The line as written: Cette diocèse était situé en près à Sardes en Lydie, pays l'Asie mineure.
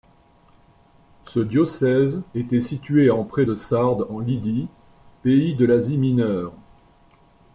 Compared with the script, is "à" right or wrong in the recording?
wrong